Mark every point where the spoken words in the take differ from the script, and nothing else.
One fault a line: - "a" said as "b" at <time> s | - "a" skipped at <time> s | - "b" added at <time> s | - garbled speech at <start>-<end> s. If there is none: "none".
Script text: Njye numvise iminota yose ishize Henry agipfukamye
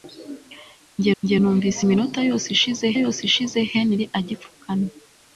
- "njye" added at 1.2 s
- "yose ishize" added at 3.0 s